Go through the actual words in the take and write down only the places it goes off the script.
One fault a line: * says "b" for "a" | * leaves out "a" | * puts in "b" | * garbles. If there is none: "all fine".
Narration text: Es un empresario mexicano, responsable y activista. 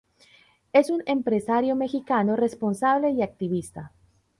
all fine